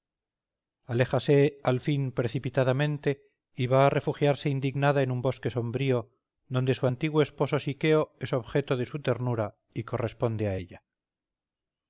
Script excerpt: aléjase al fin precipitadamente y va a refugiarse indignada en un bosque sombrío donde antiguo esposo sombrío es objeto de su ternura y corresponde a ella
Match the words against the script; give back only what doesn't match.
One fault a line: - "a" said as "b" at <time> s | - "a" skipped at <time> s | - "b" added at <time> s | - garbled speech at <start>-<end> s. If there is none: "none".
- "su" added at 6.7 s
- "sombrío" said as "siqueo" at 7.6 s